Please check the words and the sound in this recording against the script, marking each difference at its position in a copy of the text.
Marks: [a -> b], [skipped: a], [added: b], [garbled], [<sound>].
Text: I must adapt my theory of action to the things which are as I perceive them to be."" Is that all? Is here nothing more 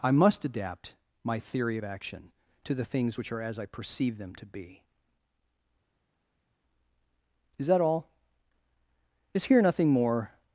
I must adapt my theory of action to the things which are as I perceive them to be."" Is that all? Is here nothing more